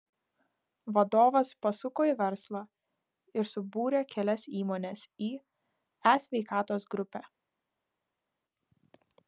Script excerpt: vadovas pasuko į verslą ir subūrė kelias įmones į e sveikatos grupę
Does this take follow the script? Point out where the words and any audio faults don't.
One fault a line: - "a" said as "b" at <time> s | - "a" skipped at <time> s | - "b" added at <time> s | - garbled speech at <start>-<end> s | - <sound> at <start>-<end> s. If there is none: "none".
none